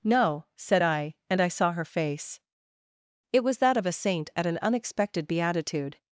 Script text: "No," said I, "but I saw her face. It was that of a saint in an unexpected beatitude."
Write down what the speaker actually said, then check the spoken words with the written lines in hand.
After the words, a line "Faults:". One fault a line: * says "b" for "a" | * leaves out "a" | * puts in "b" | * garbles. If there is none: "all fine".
"No," said I, "and I saw her face. It was that of a saint at an unexpected beatitude."
Faults:
* says "and" for "but"
* says "at" for "in"